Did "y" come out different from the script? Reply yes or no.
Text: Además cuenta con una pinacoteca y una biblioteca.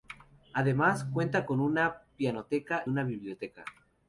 yes